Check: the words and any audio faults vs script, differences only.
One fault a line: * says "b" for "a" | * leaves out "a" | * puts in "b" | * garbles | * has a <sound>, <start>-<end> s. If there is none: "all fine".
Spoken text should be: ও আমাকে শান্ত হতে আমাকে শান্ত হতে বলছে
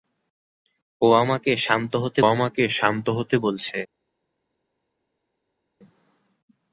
all fine